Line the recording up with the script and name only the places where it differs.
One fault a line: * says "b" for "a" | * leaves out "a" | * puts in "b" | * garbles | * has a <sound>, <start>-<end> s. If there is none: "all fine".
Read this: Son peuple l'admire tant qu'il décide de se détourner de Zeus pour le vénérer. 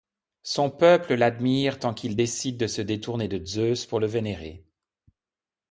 all fine